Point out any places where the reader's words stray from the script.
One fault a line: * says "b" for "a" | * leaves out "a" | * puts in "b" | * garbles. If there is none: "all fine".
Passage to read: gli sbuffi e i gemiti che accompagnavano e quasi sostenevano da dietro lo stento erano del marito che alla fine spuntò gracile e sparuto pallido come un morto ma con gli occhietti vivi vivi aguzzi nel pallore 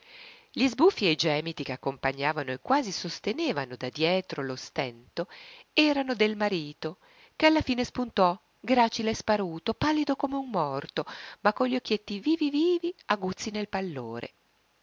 all fine